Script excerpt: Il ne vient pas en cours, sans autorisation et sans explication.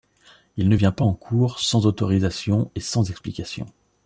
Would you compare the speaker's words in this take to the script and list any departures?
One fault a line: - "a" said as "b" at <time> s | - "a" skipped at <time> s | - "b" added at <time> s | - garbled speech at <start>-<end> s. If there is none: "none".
none